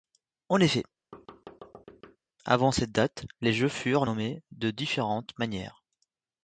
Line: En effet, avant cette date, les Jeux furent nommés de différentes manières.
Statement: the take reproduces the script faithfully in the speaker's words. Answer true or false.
true